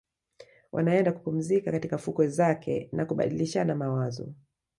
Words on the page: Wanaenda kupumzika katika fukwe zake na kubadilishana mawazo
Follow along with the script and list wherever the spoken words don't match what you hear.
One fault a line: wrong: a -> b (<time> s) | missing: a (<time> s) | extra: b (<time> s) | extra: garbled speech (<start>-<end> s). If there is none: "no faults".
no faults